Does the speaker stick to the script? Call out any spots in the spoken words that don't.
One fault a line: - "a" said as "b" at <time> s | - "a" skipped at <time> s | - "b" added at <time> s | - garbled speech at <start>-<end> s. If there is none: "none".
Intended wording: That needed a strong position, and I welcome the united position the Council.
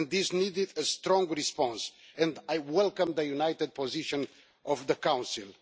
- "That" said as "This" at 0.1 s
- "position" said as "response" at 1.3 s
- "of" added at 4.7 s